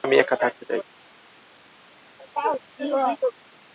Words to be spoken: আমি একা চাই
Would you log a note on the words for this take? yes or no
yes